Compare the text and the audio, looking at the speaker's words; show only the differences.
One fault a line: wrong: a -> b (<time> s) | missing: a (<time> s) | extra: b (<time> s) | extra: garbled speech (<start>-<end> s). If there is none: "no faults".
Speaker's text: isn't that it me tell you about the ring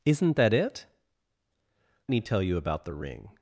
no faults